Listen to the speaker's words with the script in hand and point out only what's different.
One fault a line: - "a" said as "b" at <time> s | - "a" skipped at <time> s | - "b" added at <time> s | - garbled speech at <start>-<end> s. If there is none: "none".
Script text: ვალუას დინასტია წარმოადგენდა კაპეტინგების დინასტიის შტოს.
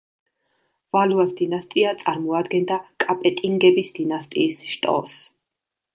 none